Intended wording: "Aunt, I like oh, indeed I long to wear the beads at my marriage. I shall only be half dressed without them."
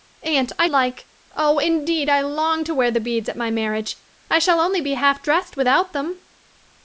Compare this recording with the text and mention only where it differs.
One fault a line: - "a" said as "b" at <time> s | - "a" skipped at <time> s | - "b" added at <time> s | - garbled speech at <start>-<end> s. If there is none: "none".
none